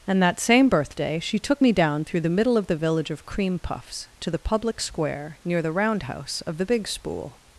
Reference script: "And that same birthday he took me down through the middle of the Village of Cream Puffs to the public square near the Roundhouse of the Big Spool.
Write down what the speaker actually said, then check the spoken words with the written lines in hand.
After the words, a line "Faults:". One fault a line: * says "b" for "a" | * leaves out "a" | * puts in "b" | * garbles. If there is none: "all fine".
"And that same birthday she took me down through the middle of the Village of Cream Puffs to the public square near the Roundhouse of the Big Spool.
Faults:
* says "she" for "he"